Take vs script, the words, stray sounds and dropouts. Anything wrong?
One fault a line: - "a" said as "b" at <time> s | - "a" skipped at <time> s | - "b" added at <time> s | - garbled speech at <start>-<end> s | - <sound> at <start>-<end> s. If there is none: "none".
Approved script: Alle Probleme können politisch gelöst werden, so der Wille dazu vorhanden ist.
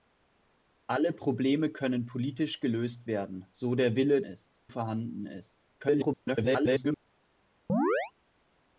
- "dazu" said as "ist" at 4.2 s
- garbled speech at 5.7-7.0 s
- chirp at 7.7-8.1 s